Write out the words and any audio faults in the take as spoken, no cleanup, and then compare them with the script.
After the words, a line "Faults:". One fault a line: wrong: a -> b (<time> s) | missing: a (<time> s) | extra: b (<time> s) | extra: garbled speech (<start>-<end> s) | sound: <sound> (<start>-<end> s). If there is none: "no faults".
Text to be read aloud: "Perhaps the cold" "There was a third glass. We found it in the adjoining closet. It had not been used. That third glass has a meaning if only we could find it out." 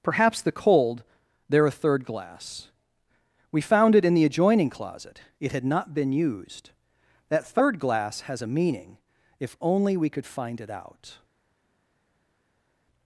"Perhaps the cold" "There a third glass. We found it in the adjoining closet. It had not been used. That third glass has a meaning if only we could find it out."
Faults:
missing: was (1.7 s)